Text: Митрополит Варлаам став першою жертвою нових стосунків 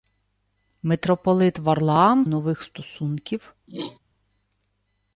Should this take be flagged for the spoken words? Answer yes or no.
yes